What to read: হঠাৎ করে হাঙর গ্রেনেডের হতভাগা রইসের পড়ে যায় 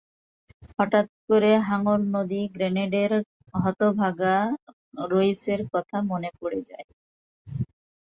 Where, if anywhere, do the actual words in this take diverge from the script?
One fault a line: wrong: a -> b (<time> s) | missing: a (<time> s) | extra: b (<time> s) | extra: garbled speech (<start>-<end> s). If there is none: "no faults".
extra: নদী (2.1 s)
extra: কথা মনে (5.7 s)